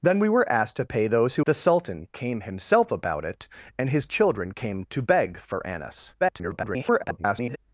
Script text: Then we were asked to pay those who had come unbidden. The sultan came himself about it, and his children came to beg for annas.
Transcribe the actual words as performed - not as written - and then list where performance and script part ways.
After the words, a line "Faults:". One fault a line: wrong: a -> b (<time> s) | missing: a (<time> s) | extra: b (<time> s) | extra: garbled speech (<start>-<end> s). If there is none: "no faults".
Then we were asked to pay those who. The sultan came himself about it, and his children came to beg for annas. [garbled]
Faults:
missing: had come unbidden (1.4 s)
extra: garbled speech (6.2-7.6 s)